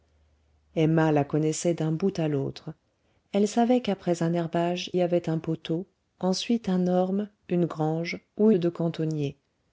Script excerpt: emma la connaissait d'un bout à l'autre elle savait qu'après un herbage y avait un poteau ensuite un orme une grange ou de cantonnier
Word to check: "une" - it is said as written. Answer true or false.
true